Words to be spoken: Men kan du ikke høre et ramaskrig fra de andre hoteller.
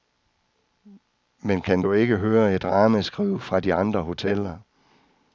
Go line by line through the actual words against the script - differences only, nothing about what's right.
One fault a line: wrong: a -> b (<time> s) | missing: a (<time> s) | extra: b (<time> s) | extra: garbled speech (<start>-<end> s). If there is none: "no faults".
no faults